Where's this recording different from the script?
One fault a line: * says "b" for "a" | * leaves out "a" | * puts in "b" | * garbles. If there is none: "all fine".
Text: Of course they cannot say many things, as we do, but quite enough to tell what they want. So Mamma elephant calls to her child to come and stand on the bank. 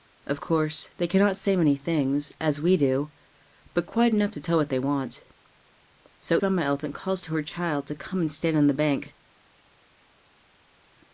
all fine